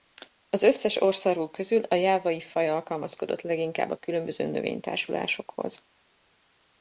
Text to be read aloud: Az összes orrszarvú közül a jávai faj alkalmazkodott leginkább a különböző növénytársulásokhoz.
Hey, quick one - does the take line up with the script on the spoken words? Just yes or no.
yes